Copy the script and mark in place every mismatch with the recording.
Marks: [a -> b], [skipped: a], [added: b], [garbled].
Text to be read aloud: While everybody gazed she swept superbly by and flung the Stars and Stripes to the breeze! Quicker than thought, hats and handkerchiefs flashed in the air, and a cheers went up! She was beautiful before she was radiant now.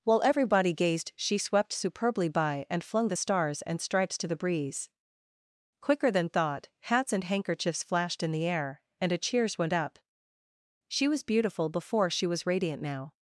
While everybody gazed she swept superbly by and flung the Stars and Stripes to the breeze! Quicker than thought, hats and handkerchiefs flashed in the air, and a cheers went up! She was beautiful before she was radiant now.